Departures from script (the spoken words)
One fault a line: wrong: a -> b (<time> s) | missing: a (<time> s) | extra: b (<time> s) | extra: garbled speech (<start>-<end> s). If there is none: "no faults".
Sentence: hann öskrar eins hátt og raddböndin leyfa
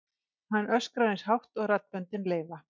no faults